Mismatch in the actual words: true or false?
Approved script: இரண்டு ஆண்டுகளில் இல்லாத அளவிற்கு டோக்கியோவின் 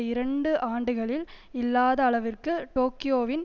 false